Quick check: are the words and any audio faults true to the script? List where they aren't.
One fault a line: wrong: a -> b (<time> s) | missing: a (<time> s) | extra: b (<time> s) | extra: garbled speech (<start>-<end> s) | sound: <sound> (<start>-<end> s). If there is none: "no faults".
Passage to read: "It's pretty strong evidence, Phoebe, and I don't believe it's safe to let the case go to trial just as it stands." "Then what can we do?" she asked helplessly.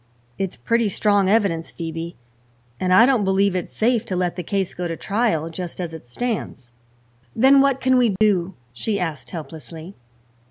sound: dropout (8.2-8.2 s)